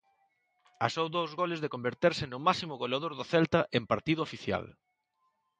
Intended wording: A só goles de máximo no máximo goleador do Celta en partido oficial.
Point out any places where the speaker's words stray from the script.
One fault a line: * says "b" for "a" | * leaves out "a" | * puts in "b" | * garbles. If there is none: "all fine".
* puts in "dous"
* says "converterse" for "máximo"